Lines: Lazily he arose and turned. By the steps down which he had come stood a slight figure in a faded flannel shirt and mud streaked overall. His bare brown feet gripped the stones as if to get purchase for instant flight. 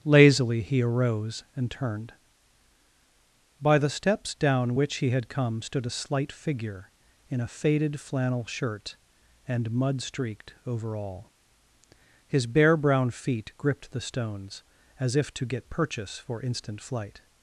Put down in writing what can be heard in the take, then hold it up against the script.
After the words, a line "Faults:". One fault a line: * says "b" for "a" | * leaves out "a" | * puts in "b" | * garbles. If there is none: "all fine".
Lazily he arose and turned. By the steps down which he had come stood a slight figure in a faded flannel shirt and mud streaked overall. His bare brown feet gripped the stones as if to get purchase for instant flight.
Faults:
all fine